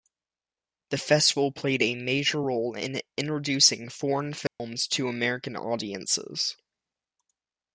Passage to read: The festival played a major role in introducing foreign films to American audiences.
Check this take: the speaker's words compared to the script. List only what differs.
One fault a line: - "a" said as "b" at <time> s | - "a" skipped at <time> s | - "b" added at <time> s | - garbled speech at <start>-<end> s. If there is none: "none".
none